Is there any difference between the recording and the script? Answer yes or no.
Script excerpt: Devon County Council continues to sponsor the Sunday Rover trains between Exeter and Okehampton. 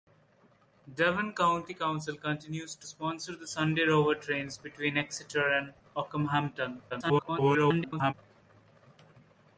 yes